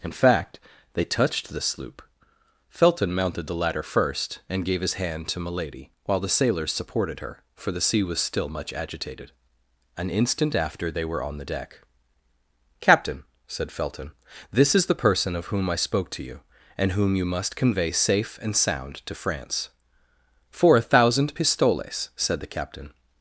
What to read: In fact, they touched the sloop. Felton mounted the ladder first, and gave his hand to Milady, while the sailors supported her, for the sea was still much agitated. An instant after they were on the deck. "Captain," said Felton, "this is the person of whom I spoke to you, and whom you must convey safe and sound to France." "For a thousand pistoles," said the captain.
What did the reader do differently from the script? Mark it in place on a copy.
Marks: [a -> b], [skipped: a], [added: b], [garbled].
In fact, they touched the sloop. Felton mounted the ladder first, and gave his hand to Milady, while the sailors supported her, for the sea was still much agitated. An instant after they were on the deck. "Captain," said Felton, "this is the person of whom I spoke to you, and whom you must convey safe and sound to France." "For a thousand pistoles," said the captain.